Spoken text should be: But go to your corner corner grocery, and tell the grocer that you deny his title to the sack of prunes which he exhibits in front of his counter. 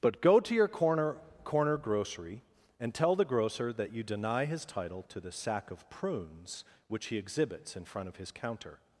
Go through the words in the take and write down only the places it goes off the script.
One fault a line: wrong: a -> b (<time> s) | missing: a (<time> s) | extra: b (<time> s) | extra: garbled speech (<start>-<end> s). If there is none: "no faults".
no faults